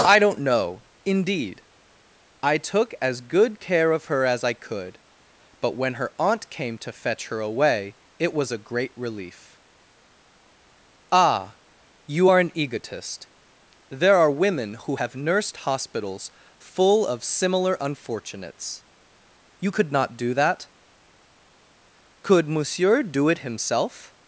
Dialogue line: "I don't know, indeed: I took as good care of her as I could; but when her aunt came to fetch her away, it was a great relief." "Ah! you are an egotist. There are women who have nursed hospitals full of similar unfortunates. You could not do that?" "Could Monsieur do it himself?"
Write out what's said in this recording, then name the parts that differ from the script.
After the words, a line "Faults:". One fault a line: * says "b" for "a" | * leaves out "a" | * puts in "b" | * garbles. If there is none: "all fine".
"I don't know, indeed: I took as good care of her as I could; but when her aunt came to fetch her away, it was a great relief." "Ah! you are an egotist. There are women who have nursed hospitals full of similar unfortunates. You could not do that?" "Could Monsieur do it himself?"
Faults:
all fine